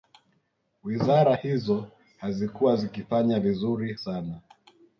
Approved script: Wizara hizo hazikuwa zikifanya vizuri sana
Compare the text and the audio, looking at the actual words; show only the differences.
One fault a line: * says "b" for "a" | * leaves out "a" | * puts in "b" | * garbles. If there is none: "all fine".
all fine